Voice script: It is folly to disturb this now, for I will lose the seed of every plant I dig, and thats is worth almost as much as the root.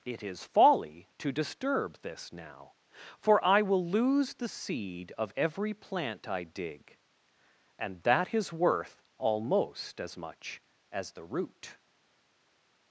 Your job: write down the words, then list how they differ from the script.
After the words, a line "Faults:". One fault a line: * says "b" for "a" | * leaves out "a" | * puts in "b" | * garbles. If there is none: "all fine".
It is folly to disturb this now, for I will lose the seed of every plant I dig, and that is worth almost as much as the root.
Faults:
* says "that" for "thats"